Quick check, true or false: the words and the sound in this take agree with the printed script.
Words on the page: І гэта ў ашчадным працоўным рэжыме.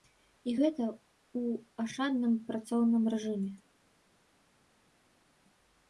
true